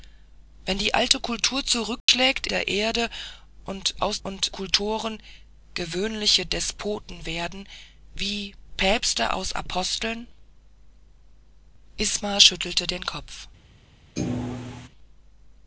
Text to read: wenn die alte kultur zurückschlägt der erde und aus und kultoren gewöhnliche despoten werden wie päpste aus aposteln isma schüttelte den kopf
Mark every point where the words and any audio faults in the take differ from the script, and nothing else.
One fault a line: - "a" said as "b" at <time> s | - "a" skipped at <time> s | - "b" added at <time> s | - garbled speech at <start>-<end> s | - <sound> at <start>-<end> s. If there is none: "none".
- dropout at 2.0-2.1 s
- thud at 14.2-14.9 s